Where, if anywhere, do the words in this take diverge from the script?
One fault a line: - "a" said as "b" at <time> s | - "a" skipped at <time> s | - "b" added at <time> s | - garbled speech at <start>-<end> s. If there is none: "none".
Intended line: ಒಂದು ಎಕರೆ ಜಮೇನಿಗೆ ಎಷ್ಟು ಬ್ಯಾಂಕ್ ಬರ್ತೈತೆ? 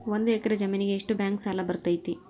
- "ಸಾಲ" added at 1.4 s